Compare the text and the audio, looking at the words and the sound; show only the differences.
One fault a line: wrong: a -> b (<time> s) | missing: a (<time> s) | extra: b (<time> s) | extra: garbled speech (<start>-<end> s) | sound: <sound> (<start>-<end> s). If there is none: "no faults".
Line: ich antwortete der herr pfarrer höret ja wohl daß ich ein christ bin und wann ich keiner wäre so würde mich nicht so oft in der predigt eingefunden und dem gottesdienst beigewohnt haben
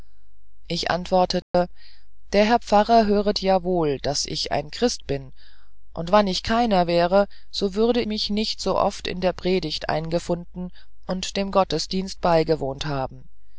sound: dropout (1.4-1.5 s)